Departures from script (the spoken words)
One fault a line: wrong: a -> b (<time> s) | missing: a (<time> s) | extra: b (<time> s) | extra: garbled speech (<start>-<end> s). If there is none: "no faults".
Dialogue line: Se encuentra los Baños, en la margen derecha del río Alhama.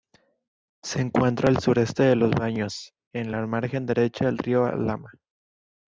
extra: al sureste de (1.5 s)